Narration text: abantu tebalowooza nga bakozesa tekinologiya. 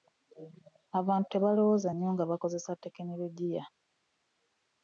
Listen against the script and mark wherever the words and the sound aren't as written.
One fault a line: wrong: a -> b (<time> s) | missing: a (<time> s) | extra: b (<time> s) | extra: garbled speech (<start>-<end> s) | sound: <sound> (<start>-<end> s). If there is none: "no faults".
extra: nnyo (1.9 s)